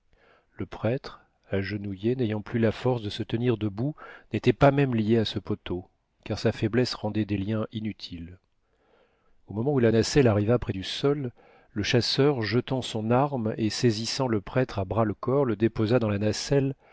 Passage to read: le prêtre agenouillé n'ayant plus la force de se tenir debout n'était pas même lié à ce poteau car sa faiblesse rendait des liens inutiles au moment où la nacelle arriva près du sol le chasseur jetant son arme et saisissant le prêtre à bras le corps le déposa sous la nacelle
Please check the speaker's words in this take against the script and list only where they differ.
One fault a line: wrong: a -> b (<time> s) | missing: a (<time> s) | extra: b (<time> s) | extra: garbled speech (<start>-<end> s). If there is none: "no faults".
wrong: sous -> dans (16.0 s)